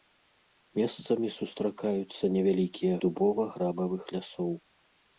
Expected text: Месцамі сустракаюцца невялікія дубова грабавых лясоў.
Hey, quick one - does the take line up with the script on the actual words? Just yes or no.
yes